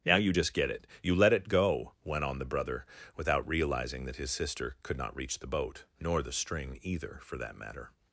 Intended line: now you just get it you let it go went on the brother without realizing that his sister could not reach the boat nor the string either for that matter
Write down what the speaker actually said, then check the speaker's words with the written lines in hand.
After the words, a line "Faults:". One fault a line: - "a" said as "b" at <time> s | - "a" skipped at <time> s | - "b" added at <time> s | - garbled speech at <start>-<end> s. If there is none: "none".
now you just get it you let it go went on the brother without realizing that his sister could not reach the boat nor the string either for that matter
Faults:
none